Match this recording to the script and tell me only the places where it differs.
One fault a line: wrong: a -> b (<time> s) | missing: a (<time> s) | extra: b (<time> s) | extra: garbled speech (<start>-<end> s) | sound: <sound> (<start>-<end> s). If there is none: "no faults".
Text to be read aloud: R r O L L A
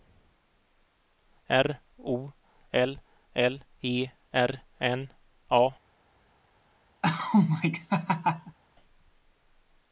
missing: r (1.8 s)
extra: E R N (3.8 s)
sound: laugh (7.0-8.6 s)